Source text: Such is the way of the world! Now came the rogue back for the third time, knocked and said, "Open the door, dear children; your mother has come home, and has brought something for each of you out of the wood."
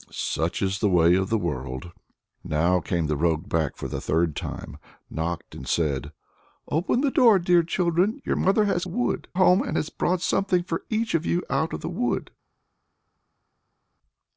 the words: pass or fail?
fail